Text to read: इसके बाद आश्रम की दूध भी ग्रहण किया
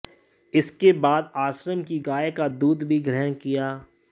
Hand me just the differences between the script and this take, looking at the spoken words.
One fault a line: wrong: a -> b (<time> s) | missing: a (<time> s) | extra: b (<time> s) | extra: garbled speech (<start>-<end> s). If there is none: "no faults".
extra: गाय का (2.0 s)